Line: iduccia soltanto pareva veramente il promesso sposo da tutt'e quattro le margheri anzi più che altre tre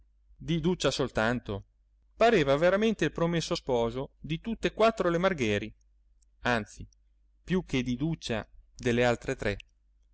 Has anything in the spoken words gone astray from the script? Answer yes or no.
yes